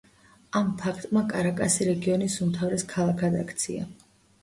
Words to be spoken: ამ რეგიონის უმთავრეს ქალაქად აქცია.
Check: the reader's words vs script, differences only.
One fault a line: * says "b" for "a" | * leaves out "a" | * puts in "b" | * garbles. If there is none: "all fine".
* puts in "ფაქტმა კარაკასი"